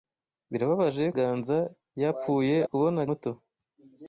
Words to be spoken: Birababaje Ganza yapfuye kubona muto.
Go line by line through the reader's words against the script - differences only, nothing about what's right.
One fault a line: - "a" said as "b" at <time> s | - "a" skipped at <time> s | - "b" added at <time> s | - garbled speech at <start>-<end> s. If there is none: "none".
none